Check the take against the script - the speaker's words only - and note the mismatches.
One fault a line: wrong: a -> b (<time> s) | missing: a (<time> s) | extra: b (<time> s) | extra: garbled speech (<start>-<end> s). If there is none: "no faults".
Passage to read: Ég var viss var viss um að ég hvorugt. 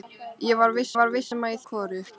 no faults